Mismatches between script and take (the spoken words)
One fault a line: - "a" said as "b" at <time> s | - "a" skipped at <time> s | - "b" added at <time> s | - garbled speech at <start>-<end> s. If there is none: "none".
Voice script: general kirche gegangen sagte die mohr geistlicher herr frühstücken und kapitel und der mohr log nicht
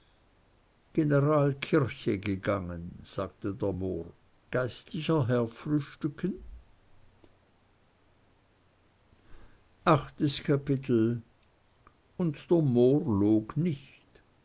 - "die" said as "der" at 3.5 s
- "und" said as "achtes" at 9.8 s